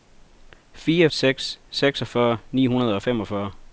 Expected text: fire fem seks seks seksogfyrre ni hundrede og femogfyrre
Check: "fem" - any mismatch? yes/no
yes